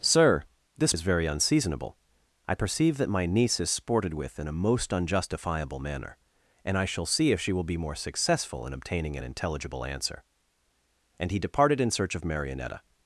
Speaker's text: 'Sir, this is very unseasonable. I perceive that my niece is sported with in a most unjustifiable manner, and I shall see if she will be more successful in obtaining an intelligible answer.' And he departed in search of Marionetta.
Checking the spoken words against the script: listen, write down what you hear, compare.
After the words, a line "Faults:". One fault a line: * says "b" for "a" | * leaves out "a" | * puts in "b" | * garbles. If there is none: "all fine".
'Sir, this is very unseasonable. I perceive that my niece is sported with in a most unjustifiable manner, and I shall see if she will be more successful in obtaining an intelligible answer.' And he departed in search of Marionetta.
Faults:
all fine